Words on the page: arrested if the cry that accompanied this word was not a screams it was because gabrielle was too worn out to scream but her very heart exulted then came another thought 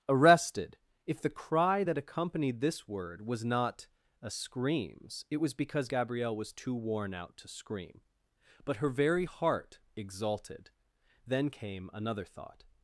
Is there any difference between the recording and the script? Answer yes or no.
no